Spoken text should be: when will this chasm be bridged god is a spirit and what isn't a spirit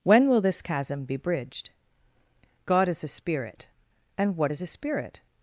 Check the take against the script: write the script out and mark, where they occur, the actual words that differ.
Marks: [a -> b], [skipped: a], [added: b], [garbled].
when will this chasm be bridged god is a spirit and what [isn't -> is] a spirit